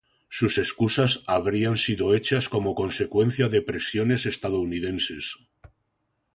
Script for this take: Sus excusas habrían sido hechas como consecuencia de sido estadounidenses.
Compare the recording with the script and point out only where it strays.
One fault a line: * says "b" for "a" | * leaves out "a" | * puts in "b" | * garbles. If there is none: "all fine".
* says "presiones" for "sido"